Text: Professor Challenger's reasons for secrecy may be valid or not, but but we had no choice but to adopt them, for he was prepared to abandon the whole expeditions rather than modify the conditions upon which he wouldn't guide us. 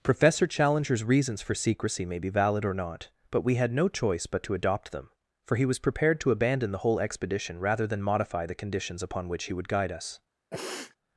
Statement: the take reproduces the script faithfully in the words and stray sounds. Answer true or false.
false